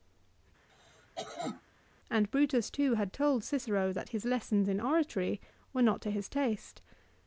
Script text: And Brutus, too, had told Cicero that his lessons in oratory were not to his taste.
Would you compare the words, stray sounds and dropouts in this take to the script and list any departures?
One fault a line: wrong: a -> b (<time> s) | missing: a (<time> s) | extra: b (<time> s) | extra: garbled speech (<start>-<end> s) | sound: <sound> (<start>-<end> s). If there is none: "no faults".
sound: cough (0.7-1.6 s)